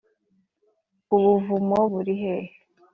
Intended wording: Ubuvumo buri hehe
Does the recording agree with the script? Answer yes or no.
yes